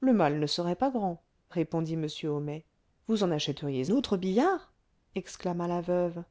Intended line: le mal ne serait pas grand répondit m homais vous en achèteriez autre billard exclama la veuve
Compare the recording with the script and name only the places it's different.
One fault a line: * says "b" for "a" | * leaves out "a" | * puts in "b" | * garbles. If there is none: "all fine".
all fine